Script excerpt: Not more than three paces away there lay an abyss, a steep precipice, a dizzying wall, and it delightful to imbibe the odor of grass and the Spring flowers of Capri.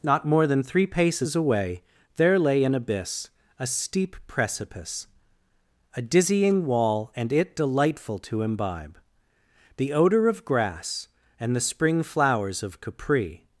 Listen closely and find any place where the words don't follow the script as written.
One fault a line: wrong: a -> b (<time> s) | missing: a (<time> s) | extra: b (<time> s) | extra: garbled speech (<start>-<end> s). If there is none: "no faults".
no faults